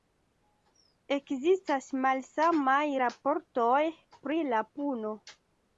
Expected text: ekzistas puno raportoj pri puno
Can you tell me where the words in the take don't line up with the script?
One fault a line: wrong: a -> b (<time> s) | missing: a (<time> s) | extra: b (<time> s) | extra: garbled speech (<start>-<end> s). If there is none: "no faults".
wrong: puno -> malsamaj (2.1 s)
extra: la (4.5 s)